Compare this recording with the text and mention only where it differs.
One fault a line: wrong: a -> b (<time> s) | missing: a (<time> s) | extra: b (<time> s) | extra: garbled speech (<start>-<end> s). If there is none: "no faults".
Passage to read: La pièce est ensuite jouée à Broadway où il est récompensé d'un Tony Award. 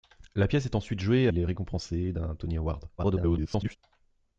missing: à Broadway où (1.3 s)
extra: garbled speech (3.0-3.8 s)